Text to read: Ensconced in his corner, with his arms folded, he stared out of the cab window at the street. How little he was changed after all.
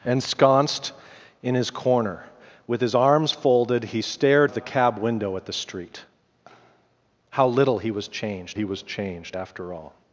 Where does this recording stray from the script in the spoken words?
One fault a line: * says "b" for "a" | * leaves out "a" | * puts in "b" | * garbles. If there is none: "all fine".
* leaves out "out"
* puts in "he was changed"